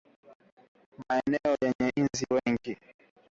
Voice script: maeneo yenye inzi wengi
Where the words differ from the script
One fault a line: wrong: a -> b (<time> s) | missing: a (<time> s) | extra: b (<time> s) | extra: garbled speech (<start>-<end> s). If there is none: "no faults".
no faults